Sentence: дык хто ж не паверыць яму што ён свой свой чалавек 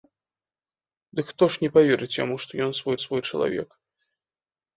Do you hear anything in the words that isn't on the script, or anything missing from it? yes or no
no